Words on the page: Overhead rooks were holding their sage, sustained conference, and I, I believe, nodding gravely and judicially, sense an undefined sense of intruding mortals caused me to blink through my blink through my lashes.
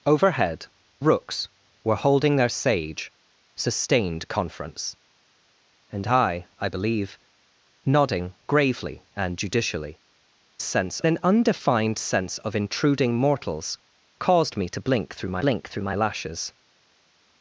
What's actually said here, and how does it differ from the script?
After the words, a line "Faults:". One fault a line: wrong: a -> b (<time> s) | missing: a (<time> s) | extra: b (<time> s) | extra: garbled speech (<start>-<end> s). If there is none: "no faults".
Overhead rooks were holding their sage, sustained conference, and I, I believe, nodding gravely and judicially, sense an undefined sense of intruding mortals caused me to blink through my blink through my lashes.
Faults:
no faults